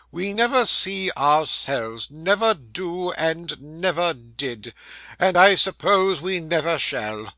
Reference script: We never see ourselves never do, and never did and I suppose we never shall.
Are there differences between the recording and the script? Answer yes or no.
no